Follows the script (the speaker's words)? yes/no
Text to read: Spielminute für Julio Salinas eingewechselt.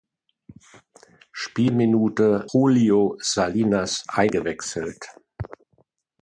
no